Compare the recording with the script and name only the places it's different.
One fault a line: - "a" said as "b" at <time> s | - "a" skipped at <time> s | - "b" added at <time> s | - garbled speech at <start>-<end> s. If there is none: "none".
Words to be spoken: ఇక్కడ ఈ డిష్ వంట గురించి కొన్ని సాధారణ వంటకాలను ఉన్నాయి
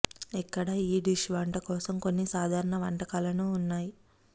- "గురించి" said as "కోసం" at 1.7 s